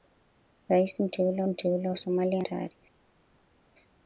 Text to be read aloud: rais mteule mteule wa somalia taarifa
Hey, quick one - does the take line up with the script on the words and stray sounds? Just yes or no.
yes